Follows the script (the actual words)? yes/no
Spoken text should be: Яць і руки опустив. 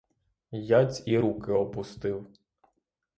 yes